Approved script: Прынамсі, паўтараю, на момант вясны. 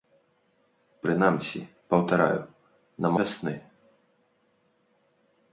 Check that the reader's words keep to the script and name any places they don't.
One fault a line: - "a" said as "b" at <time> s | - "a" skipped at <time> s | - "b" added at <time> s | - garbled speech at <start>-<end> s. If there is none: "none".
- "момант" skipped at 3.1 s